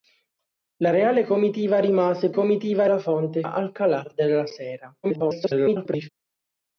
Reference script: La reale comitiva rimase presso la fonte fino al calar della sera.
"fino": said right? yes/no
no